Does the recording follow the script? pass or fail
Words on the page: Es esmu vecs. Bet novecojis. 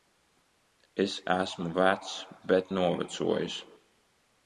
pass